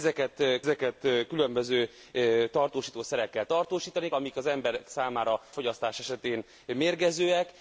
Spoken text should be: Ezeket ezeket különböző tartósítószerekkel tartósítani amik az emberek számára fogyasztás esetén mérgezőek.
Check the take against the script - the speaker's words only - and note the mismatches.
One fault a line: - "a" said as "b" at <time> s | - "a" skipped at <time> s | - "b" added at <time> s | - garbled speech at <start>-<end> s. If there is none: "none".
none